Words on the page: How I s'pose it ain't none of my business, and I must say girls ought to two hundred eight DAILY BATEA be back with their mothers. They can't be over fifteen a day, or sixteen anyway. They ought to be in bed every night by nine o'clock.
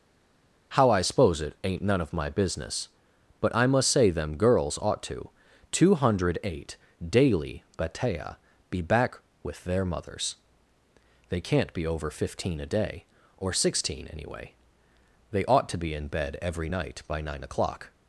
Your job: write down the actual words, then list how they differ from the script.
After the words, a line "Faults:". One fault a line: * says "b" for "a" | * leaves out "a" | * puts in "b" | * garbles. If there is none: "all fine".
How I s'pose it ain't none of my business, but I must say them girls ought to two hundred eight DAILY BATEA be back with their mothers. They can't be over fifteen a day, or sixteen anyway. They ought to be in bed every night by nine o'clock.
Faults:
* says "but" for "and"
* puts in "them"